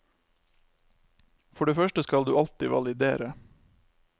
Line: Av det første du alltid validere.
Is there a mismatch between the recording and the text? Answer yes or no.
yes